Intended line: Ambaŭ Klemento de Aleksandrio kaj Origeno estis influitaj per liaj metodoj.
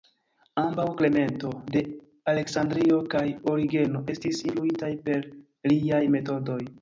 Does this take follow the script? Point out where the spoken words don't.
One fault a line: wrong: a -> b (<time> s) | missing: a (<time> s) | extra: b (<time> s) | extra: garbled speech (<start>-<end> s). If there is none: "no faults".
no faults